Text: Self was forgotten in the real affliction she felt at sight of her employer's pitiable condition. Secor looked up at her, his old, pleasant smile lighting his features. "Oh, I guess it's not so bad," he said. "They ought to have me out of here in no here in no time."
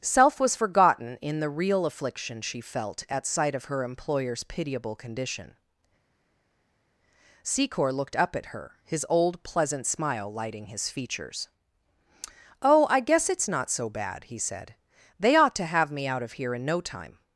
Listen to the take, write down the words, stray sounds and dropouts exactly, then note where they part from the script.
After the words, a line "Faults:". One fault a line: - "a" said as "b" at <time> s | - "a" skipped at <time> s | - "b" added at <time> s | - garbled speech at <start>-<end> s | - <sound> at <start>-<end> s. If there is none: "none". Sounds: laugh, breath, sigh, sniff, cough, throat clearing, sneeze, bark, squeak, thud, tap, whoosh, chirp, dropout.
Self was forgotten in the real affliction she felt at sight of her employer's pitiable condition. Secor looked up at her, his old, pleasant smile lighting his features. "Oh, I guess it's not so bad," he said. "They ought to have me out of here in no time."
Faults:
- "here in no" skipped at 16.8 s